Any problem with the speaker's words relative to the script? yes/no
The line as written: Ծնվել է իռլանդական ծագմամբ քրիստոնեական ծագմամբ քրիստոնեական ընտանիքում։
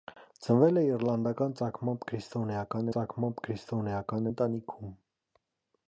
no